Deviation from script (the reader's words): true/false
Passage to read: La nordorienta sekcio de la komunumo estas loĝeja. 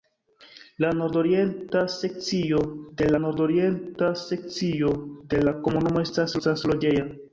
true